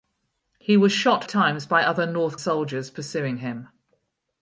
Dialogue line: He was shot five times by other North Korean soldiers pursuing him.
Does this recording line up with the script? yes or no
no